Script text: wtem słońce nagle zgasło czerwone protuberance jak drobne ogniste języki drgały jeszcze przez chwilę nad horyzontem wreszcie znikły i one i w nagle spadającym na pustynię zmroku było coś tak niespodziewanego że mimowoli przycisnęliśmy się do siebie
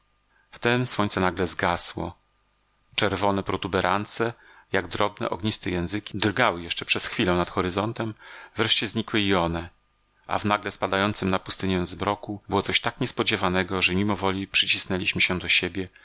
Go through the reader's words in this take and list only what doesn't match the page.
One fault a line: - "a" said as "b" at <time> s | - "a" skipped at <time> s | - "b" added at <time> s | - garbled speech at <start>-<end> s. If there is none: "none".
- "i" said as "a" at 10.3 s